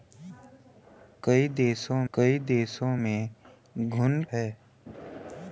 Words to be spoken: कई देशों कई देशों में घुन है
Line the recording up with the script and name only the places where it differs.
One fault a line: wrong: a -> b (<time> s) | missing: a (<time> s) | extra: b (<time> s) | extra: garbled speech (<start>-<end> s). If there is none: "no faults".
no faults